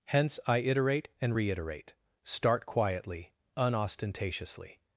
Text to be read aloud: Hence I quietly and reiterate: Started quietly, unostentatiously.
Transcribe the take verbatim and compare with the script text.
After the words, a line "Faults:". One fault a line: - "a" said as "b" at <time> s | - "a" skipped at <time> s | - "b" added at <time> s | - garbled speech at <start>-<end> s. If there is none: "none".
Hence I iterate and reiterate: Start quietly, unostentatiously.
Faults:
- "quietly" said as "iterate" at 0.6 s
- "Started" said as "Start" at 2.2 s